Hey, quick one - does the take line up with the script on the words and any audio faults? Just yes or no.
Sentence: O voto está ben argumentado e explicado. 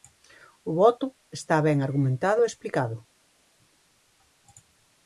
yes